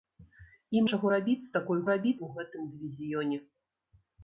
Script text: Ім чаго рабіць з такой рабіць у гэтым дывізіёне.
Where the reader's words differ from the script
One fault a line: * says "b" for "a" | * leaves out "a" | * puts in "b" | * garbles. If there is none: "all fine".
all fine